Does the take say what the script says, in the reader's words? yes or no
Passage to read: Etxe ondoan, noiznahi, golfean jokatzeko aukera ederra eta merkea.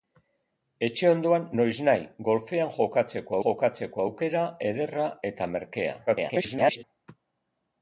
no